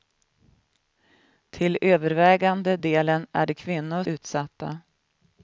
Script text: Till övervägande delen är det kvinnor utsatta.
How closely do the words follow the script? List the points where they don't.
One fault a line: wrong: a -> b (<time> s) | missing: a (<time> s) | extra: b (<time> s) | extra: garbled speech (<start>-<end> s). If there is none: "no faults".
no faults